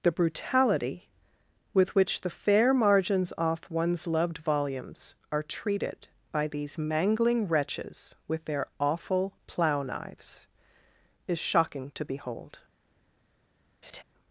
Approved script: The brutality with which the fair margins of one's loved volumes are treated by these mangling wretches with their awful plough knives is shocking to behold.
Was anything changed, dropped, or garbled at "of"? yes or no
yes